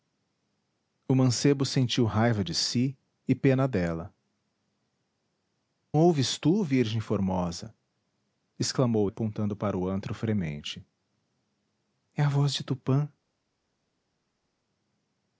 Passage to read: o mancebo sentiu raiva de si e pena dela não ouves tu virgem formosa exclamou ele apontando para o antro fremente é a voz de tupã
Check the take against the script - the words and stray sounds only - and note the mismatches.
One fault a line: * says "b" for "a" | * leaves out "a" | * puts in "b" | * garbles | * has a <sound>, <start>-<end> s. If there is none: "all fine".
* leaves out "não"
* leaves out "ele"